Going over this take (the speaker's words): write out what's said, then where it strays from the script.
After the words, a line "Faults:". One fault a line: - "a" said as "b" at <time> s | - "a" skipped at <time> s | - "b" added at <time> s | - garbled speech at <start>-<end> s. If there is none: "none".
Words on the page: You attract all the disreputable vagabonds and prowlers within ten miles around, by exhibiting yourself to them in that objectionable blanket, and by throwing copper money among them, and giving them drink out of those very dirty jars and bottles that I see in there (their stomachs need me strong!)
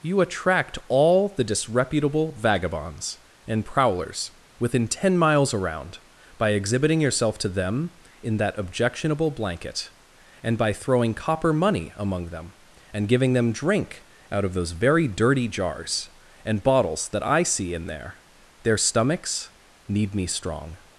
You attract all the disreputable vagabonds and prowlers within ten miles around, by exhibiting yourself to them in that objectionable blanket, and by throwing copper money among them, and giving them drink out of those very dirty jars and bottles that I see in there (their stomachs need me strong!)
Faults:
none